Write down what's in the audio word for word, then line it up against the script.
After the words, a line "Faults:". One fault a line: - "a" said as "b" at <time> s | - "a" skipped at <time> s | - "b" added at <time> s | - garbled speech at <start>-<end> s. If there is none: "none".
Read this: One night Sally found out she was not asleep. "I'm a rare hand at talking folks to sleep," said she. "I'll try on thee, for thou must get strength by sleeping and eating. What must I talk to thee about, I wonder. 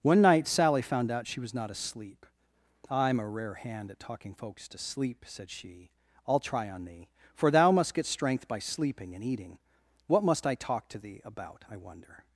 One night Sally found out she was not asleep. "I'm a rare hand at talking folks to sleep," said she. "I'll try on thee, for thou must get strength by sleeping and eating. What must I talk to thee about, I wonder.
Faults:
none